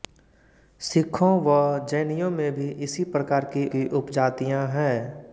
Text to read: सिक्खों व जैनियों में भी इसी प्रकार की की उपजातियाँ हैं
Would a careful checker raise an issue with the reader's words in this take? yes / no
no